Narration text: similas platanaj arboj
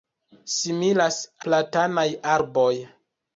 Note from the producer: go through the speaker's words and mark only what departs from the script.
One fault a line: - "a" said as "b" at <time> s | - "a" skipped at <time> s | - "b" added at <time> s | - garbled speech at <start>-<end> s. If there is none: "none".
none